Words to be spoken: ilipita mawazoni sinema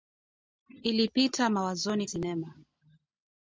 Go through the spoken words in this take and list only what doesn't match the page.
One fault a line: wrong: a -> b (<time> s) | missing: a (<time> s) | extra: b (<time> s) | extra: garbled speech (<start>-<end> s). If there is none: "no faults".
no faults